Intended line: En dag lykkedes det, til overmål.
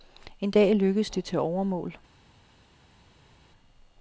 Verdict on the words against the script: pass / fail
pass